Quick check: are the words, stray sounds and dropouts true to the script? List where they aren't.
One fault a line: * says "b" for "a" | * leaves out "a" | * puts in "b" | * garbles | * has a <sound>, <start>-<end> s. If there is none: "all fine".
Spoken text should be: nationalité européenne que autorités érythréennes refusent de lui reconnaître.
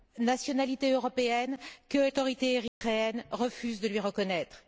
* has a dropout, 2.7-2.8 s